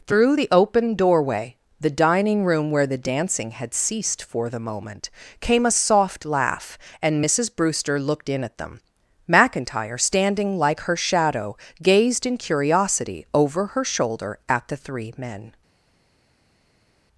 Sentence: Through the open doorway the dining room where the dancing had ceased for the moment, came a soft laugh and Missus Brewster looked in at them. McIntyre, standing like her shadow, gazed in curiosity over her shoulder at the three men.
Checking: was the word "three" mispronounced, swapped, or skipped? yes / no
no